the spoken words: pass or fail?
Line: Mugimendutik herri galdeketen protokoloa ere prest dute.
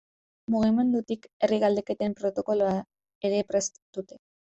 pass